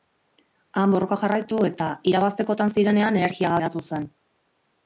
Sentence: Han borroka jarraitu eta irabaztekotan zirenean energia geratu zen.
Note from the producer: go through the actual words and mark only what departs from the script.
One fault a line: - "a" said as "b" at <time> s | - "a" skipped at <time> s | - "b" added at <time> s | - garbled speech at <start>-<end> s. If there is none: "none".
none